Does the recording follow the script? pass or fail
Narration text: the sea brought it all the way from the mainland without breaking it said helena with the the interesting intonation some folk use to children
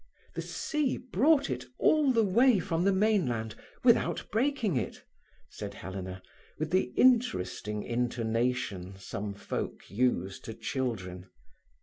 fail